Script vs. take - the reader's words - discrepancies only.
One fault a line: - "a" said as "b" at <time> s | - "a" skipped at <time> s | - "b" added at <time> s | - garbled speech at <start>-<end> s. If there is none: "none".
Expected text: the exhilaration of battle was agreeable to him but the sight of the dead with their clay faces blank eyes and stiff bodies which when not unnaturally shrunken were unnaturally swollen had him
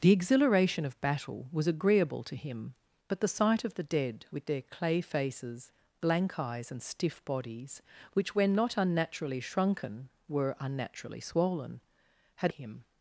none